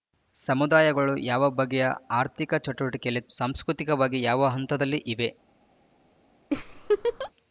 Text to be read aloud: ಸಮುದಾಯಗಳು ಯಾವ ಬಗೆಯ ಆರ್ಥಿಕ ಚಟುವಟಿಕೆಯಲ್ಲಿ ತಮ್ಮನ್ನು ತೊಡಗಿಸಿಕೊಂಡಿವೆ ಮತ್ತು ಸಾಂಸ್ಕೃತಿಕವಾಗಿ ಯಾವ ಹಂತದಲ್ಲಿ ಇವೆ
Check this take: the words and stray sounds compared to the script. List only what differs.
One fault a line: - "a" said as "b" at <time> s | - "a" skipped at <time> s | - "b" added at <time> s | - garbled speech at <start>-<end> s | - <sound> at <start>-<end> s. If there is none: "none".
- "ತಮ್ಮನ್ನು ತೊಡಗಿಸಿಕೊಂಡಿವೆ ಮತ್ತು" skipped at 3.2 s
- laugh at 6.5-7.3 s